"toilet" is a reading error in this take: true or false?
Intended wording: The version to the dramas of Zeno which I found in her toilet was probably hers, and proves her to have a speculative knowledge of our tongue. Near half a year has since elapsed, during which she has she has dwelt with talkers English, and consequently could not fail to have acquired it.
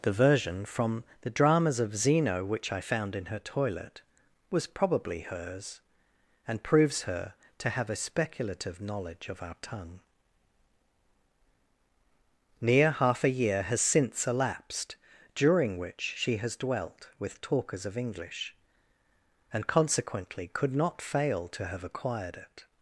false